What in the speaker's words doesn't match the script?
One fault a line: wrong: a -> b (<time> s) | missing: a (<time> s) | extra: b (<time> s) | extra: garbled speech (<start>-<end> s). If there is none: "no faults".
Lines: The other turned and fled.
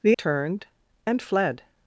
missing: other (0.2 s)